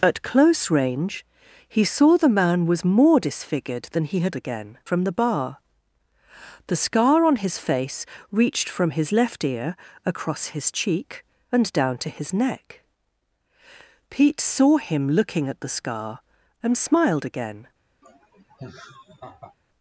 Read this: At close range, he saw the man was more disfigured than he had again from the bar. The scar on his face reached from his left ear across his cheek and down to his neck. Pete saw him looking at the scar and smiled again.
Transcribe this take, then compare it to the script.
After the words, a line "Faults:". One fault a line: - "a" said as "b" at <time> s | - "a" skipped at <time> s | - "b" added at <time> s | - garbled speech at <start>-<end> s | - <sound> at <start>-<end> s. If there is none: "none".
At close range, he saw the man was more disfigured than he had again from the bar. The scar on his face reached from his left ear across his cheek and down to his neck. Pete saw him looking at the scar and smiled again.
Faults:
- laugh at 18.0-19.5 s